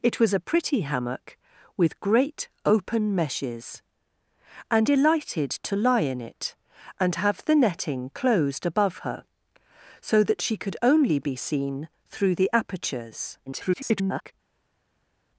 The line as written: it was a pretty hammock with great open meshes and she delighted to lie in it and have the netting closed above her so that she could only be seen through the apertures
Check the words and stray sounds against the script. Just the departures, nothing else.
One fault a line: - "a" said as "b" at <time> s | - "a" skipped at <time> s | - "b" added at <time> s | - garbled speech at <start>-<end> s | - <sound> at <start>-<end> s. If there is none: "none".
- "she" skipped at 4.9 s
- garbled speech at 13.5-14.3 s